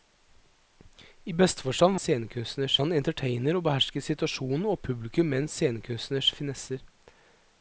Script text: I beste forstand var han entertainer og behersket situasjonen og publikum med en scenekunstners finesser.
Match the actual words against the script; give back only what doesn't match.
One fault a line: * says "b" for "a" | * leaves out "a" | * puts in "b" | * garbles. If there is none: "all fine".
* says "scenekunstners" for "var"